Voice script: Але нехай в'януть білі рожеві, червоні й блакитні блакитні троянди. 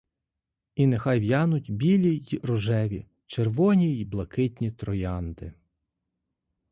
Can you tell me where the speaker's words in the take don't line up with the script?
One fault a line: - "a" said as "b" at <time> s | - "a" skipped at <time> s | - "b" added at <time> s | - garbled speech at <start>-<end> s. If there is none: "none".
- "Але" said as "І" at 0.8 s
- "й" added at 2.2 s
- "блакитні" skipped at 4.7 s